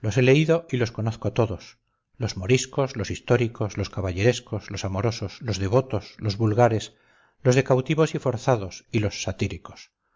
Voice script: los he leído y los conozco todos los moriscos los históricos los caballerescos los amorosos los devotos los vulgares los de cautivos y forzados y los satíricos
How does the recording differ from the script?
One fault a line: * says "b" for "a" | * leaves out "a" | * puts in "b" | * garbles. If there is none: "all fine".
all fine